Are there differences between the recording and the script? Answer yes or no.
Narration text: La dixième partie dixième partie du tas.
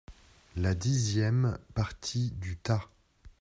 yes